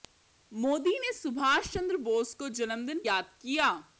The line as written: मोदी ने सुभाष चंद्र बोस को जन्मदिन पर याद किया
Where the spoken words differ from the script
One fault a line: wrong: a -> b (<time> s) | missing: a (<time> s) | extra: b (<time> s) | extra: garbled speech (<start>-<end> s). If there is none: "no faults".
missing: पर (3.0 s)